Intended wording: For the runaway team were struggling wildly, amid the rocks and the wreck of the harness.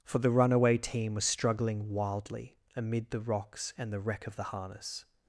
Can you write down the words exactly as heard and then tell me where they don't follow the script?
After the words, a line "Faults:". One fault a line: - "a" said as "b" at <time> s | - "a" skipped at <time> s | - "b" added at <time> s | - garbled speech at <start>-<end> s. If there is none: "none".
For the runaway team was struggling wildly, amid the rocks and the wreck of the harness.
Faults:
- "were" said as "was" at 1.1 s